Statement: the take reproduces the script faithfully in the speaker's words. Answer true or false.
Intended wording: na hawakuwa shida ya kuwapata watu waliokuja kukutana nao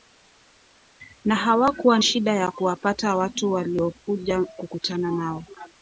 true